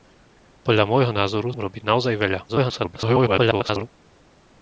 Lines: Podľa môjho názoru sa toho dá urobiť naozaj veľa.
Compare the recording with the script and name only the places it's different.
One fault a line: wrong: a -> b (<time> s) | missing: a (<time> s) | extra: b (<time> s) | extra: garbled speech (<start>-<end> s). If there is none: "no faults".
missing: sa toho dá (1.5 s)
extra: garbled speech (2.5-3.9 s)